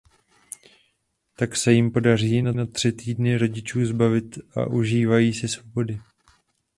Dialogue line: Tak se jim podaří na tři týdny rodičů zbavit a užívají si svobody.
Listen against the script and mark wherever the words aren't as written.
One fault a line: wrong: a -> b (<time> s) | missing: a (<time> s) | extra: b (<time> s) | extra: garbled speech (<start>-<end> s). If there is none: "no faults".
extra: na (2.5 s)